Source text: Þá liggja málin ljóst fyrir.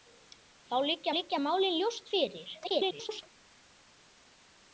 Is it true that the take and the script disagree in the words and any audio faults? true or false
true